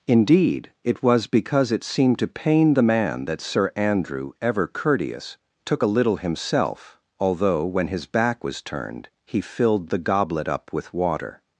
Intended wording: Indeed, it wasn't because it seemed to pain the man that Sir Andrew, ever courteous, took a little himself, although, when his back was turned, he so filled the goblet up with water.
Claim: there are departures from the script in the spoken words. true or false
true